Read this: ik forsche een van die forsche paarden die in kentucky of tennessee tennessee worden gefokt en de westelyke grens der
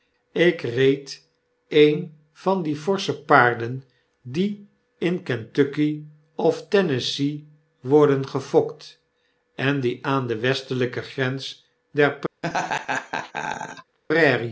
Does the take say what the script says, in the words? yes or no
no